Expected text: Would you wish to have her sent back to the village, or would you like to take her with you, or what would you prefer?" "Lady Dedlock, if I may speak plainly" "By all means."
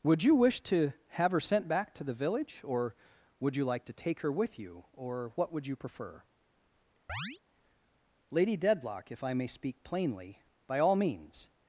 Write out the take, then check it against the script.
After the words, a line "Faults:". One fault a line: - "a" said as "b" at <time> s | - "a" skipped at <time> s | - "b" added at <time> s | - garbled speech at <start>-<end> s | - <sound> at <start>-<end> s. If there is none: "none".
Would you wish to have her sent back to the village, or would you like to take her with you, or what would you prefer?" "Lady Dedlock, if I may speak plainly" "By all means."
Faults:
- chirp at 7.1-7.4 s